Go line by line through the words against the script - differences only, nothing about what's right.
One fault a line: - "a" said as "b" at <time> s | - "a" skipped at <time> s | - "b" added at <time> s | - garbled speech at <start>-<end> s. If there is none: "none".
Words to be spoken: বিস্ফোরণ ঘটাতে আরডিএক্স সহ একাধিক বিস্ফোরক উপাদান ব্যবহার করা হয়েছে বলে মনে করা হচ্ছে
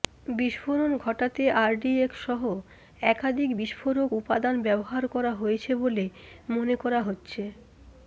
none